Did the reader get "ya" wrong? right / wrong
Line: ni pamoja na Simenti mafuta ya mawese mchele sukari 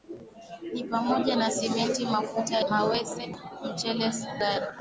wrong